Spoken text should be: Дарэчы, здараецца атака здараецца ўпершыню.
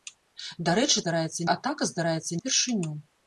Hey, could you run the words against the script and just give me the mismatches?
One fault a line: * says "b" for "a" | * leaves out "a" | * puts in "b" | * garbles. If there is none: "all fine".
all fine